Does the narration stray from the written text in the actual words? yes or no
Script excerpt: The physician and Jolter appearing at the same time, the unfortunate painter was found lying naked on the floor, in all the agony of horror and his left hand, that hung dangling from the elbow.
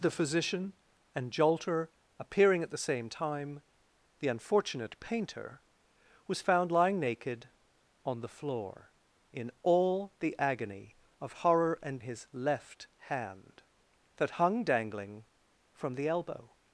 no